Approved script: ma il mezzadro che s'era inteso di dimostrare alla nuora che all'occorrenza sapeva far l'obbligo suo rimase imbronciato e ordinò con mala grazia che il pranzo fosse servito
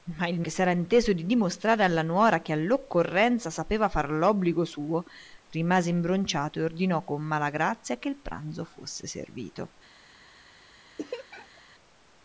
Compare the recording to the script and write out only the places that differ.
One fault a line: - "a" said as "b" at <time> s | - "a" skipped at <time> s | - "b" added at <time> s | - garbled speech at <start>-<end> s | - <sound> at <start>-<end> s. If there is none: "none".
- "mezzadro" skipped at 0.4 s
- laugh at 11.0-11.6 s